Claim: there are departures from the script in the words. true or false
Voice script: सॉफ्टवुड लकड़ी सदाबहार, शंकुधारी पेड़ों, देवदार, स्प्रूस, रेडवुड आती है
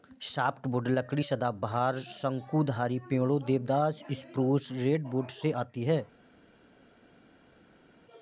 true